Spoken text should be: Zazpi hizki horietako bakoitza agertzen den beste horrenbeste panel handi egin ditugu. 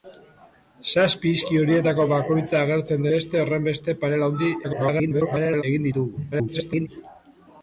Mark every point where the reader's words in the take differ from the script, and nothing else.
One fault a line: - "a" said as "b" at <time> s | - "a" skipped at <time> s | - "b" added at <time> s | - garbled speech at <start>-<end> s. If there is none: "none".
- "den" skipped at 3.0 s
- garbled speech at 4.6-5.6 s
- garbled speech at 6.3-6.9 s